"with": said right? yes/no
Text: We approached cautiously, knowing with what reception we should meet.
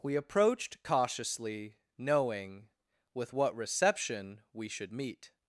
yes